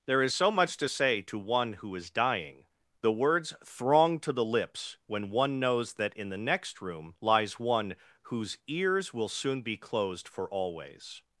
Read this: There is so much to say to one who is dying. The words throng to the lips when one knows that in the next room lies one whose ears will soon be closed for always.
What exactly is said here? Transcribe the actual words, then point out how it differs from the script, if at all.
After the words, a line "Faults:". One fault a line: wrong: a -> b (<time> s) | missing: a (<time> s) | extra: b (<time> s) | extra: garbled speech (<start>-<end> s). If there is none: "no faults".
There is so much to say to one who is dying. The words throng to the lips when one knows that in the next room lies one whose ears will soon be closed for always.
Faults:
no faults